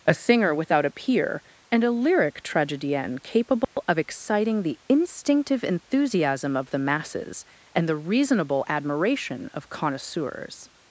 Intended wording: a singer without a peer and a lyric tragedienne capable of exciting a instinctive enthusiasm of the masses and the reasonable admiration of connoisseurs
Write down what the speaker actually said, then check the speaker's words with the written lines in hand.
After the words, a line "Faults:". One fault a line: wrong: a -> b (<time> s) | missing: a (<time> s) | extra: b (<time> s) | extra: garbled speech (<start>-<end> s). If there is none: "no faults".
a singer without a peer and a lyric tragedienne capable of exciting the instinctive enthusiasm of the masses and the reasonable admiration of connoisseurs
Faults:
wrong: a -> the (4.6 s)